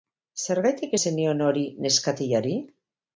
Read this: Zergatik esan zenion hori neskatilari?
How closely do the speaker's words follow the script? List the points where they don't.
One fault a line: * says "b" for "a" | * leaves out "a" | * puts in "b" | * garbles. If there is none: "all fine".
* leaves out "esan"